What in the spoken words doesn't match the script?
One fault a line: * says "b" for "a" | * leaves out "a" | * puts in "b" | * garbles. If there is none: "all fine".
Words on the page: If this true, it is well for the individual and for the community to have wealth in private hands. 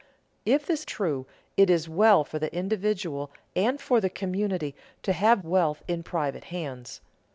all fine